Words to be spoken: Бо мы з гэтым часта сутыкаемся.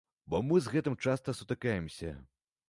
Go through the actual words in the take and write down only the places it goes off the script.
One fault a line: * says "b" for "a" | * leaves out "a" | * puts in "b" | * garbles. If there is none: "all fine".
all fine